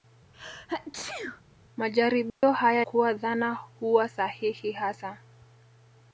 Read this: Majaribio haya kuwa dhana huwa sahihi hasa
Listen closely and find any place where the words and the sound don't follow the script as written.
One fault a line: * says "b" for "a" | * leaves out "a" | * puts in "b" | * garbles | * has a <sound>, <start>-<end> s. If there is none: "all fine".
* has a sneeze, 0.3-1.4 s
* has a dropout, 2.3-2.4 s